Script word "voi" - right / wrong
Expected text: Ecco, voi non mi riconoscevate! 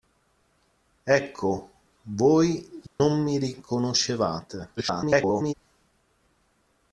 right